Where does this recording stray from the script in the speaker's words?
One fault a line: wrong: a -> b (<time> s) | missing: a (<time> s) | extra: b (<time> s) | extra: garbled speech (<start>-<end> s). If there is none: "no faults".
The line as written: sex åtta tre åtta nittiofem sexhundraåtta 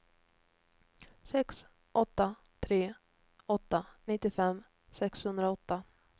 no faults